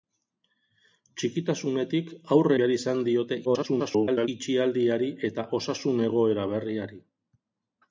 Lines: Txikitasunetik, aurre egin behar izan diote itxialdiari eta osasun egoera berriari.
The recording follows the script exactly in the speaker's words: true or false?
false